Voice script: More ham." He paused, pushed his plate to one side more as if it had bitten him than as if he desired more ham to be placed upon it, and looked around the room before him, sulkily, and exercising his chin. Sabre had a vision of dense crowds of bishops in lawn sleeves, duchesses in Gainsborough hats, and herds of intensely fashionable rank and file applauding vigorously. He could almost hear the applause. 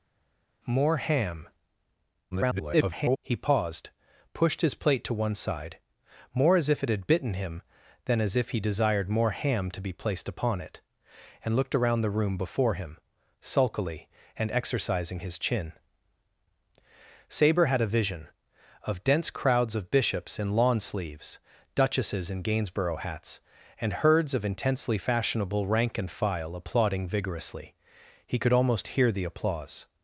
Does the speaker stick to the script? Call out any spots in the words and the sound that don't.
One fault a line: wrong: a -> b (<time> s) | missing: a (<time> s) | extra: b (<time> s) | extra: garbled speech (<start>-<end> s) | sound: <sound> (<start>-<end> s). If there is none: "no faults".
extra: garbled speech (2.3-3.2 s)